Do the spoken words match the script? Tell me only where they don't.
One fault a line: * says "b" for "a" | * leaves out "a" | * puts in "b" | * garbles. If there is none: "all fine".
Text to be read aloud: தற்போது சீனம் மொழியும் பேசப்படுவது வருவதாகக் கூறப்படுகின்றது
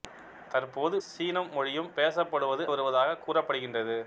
all fine